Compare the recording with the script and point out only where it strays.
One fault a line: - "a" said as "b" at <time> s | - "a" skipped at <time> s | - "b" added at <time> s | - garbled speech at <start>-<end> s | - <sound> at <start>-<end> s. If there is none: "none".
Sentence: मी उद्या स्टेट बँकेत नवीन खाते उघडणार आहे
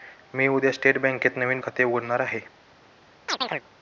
- chirp at 3.3-3.6 s